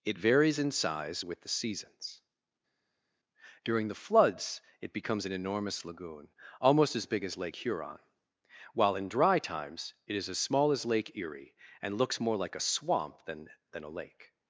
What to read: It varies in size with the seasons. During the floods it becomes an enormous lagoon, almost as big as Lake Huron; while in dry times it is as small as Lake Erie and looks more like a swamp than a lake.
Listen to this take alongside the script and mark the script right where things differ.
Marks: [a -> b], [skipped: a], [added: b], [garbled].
It varies in size with the seasons. During the floods it becomes an enormous lagoon, almost as big as Lake Huron; while in dry times it is as small as Lake Erie and looks more like a swamp than [added: than] a lake.